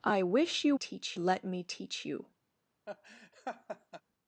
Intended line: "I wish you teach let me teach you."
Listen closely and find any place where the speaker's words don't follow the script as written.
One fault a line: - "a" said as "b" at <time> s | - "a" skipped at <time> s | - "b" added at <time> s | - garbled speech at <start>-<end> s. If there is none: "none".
none